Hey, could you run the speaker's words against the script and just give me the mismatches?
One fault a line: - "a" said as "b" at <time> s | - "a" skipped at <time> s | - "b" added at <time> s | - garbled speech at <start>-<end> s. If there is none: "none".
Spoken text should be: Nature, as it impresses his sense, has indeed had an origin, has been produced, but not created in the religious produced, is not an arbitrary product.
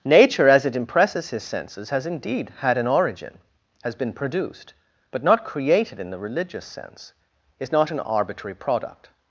- "sense" said as "senses" at 1.4 s
- "produced" said as "sense" at 6.7 s